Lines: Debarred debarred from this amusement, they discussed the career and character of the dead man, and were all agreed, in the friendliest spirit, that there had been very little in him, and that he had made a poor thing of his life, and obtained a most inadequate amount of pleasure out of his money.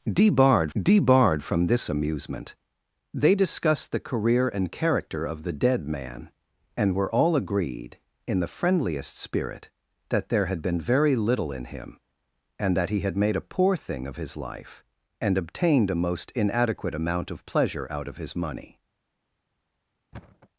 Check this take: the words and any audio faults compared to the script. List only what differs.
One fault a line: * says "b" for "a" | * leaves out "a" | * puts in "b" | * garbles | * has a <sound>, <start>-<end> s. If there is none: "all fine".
* has a thud, 20.1-20.5 s